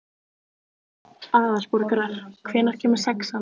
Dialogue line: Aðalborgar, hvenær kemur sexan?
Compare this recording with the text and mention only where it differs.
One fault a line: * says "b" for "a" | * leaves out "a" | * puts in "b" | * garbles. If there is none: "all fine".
all fine